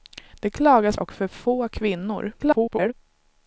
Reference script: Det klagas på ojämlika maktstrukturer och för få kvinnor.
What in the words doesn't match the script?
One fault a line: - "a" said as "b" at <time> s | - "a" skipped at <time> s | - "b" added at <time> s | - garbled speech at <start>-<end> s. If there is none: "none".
- "på ojämlika maktstrukturer" skipped at 1.0 s
- garbled speech at 2.4-2.9 s